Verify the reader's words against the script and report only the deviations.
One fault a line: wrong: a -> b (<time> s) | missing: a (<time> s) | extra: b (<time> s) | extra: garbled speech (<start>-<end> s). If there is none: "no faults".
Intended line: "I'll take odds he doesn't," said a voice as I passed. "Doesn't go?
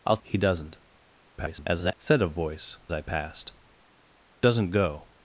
missing: take odds (0.2 s)
extra: garbled speech (1.4-1.9 s)
missing: as (2.8 s)